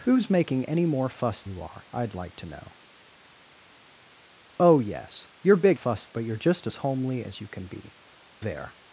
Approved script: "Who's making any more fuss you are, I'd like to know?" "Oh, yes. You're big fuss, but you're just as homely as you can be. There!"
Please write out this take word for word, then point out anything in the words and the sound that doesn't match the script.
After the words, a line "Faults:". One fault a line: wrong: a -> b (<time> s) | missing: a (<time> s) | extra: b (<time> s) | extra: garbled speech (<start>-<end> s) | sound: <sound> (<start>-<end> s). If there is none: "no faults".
"Who's making any more fuss you are, I'd like to know?" "Oh, yes. You're big fuss, but you're just as homely as you can be. There!"
Faults:
no faults